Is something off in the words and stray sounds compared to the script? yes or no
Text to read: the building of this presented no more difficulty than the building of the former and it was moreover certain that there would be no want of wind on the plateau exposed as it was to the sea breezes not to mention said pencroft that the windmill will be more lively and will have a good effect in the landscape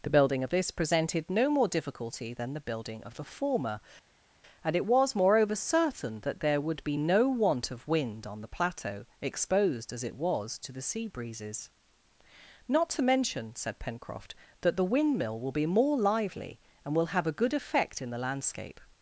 no